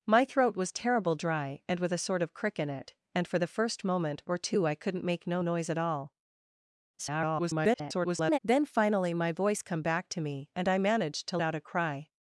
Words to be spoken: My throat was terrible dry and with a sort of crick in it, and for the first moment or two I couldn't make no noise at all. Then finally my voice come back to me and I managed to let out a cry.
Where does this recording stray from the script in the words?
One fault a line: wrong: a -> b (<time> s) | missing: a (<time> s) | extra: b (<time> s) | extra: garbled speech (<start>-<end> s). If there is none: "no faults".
extra: garbled speech (7.0-8.4 s)
missing: let (11.4 s)